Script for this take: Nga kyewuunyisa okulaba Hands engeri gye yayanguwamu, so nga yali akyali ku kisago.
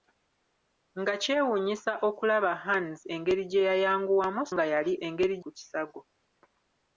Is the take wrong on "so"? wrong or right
wrong